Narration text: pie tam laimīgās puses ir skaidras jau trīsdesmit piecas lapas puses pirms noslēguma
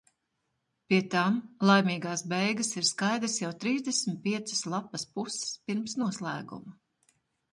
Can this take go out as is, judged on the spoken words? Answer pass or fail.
fail